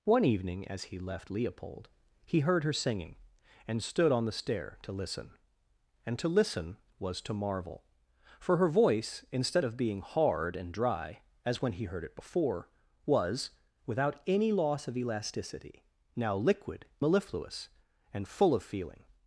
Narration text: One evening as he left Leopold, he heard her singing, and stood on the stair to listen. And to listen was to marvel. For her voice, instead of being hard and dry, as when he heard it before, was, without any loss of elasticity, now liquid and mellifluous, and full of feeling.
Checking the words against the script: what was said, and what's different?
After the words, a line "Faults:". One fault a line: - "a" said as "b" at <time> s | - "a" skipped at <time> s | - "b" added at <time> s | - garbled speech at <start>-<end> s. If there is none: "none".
One evening as he left Leopold, he heard her singing, and stood on the stair to listen. And to listen was to marvel. For her voice, instead of being hard and dry, as when he heard it before, was, without any loss of elasticity, now liquid mellifluous, and full of feeling.
Faults:
- "and" skipped at 16.9 s